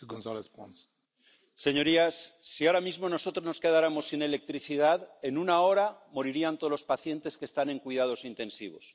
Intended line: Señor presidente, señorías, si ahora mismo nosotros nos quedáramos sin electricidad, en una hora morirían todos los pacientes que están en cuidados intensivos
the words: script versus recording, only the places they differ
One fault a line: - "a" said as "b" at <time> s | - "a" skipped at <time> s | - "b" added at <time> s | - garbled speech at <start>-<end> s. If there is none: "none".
none